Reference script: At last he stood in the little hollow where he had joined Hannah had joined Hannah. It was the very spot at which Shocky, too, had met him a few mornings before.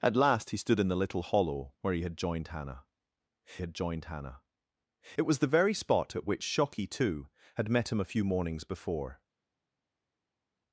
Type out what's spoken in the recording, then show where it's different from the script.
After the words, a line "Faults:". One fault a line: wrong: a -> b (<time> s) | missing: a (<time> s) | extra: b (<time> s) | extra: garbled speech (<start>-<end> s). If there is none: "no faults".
At last he stood in the little hollow where he had joined Hannah had joined Hannah. It was the very spot at which Shocky, too, had met him a few mornings before.
Faults:
no faults